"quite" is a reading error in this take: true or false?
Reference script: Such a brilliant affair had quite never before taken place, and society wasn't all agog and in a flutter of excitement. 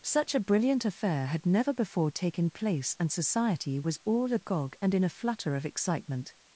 true